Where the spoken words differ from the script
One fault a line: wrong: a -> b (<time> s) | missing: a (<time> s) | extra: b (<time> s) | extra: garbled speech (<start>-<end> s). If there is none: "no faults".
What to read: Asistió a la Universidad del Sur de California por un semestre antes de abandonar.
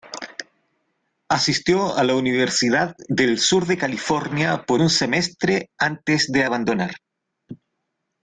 no faults